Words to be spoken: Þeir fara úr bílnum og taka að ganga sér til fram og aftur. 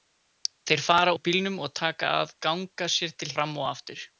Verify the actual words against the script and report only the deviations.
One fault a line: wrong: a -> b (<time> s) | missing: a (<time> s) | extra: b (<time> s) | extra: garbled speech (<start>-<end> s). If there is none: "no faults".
no faults